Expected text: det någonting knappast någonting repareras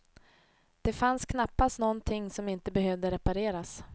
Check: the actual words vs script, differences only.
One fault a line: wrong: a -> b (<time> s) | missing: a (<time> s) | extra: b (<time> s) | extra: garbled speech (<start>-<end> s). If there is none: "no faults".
wrong: någonting -> fanns (0.9 s)
extra: som inte behövde (2.3 s)